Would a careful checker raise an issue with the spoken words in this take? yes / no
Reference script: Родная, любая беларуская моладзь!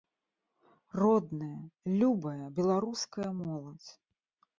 no